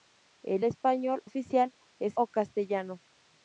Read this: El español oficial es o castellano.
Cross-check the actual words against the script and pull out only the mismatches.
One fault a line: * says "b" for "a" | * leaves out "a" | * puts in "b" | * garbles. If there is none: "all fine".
all fine